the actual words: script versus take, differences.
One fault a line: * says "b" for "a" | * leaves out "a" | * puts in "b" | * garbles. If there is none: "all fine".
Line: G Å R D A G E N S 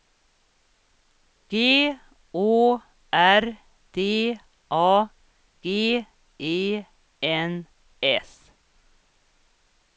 all fine